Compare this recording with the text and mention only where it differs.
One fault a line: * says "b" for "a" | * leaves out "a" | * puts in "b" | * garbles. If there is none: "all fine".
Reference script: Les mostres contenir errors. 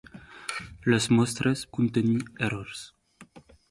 all fine